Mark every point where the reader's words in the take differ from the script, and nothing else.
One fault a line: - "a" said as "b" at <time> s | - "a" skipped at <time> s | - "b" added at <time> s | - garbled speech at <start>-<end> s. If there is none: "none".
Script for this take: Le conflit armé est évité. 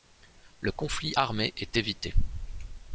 none